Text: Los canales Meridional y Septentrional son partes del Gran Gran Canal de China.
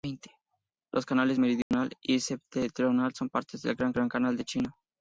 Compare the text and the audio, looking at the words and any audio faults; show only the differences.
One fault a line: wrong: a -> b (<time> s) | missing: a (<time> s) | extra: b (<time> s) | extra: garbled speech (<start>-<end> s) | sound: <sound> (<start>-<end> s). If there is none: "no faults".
sound: dropout (1.6-1.7 s)